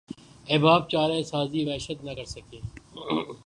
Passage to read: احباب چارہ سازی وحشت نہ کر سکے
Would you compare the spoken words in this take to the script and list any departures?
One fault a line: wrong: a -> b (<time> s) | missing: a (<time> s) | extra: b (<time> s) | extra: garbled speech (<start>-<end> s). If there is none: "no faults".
no faults